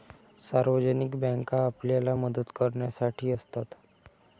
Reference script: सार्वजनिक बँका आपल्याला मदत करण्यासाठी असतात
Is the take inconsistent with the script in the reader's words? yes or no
no